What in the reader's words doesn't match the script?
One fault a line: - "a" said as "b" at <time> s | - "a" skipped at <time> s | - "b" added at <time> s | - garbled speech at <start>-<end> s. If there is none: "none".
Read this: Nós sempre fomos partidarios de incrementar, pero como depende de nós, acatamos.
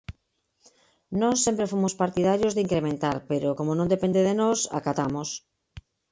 - "non" added at 3.7 s